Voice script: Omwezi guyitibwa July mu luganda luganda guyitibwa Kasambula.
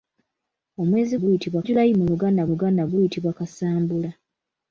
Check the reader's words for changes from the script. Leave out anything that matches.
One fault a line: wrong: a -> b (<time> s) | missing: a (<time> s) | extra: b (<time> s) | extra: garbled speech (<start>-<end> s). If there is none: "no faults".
no faults